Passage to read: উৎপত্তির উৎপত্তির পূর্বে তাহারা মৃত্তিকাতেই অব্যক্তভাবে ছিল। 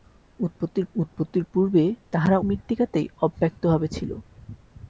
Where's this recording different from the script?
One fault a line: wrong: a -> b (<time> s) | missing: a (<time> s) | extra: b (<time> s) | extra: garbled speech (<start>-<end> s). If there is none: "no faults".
no faults